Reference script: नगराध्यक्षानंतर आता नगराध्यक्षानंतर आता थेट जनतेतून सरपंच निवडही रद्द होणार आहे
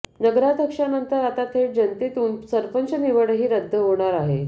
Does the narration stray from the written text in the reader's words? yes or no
yes